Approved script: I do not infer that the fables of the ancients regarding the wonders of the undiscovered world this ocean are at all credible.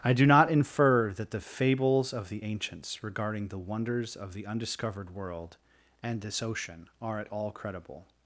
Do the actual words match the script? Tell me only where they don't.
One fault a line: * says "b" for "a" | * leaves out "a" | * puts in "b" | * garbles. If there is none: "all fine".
* puts in "and"